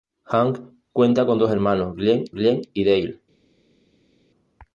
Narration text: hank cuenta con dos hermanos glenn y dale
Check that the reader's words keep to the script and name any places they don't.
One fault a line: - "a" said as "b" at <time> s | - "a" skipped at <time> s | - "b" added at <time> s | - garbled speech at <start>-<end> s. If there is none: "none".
- "glenn" added at 2.3 s